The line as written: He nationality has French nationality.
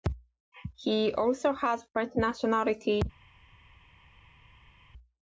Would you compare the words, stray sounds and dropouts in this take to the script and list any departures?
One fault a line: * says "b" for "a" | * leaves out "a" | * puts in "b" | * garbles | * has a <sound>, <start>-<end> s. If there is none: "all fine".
* says "also" for "nationality"